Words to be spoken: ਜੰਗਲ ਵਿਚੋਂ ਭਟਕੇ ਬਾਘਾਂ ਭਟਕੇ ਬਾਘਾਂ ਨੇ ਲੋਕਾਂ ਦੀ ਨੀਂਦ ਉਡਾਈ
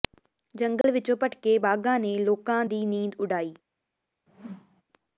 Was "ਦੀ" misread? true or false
false